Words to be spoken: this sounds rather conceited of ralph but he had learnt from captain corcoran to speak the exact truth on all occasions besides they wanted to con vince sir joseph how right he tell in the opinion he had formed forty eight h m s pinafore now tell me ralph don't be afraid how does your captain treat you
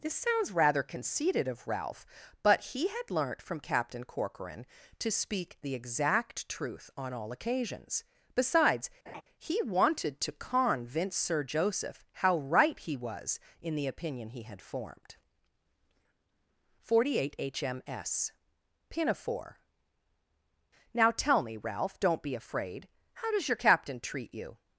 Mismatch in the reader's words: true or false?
true